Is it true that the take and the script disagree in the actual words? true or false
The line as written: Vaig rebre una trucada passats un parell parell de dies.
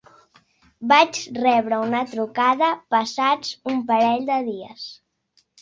true